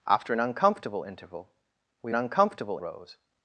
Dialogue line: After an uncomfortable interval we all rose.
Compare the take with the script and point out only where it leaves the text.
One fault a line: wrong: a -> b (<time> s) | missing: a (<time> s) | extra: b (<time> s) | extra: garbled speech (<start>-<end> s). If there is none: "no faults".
wrong: all -> uncomfortable (2.1 s)